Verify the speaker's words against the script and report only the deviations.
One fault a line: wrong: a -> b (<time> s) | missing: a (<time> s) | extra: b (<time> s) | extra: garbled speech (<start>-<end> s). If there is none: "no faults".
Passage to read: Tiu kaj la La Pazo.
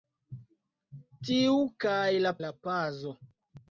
no faults